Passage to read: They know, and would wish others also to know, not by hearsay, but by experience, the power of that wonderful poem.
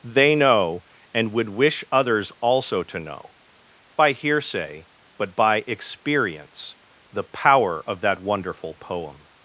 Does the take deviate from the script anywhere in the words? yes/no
yes